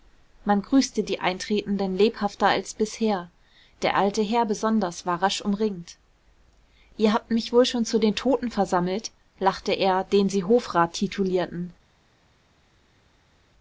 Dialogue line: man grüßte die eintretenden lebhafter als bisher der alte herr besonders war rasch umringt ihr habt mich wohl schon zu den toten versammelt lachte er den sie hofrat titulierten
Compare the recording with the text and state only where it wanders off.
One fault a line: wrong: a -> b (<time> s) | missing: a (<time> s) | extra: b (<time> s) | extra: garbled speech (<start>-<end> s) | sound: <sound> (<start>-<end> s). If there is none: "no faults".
no faults